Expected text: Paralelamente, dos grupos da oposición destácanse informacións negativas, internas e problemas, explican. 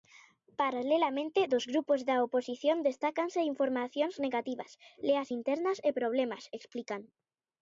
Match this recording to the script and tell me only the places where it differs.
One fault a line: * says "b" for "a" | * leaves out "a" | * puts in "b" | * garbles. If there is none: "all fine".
* puts in "leas"